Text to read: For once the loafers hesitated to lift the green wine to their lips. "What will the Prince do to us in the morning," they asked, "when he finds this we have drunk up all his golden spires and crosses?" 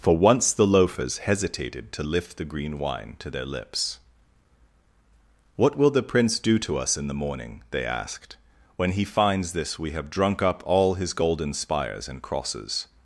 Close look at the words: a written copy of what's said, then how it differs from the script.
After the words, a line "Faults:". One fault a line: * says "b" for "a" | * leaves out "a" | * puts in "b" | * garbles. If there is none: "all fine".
For once the loafers hesitated to lift the green wine to their lips. "What will the Prince do to us in the morning," they asked, "when he finds this we have drunk up all his golden spires and crosses?"
Faults:
all fine